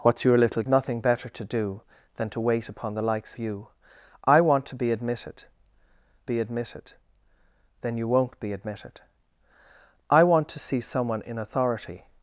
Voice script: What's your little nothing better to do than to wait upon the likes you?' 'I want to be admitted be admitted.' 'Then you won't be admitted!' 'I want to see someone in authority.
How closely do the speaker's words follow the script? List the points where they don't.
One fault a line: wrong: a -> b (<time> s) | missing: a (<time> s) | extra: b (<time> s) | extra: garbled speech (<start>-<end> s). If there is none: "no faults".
no faults